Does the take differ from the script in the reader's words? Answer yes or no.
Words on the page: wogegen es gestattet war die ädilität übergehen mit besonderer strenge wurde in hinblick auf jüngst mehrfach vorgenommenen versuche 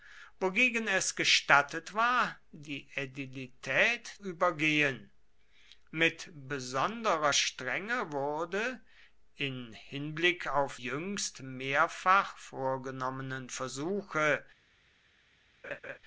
no